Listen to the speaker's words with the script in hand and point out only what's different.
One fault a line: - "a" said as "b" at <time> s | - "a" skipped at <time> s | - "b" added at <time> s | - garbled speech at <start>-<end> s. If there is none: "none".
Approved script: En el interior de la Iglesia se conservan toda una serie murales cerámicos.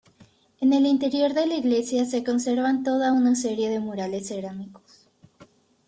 - "de" added at 3.7 s